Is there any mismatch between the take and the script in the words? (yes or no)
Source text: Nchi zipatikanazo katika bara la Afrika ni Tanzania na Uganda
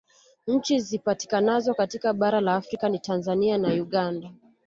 no